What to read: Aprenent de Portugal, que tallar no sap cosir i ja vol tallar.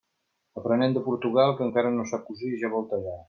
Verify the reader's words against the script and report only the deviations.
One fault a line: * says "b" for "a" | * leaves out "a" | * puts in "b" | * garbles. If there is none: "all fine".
* says "encara" for "tallar"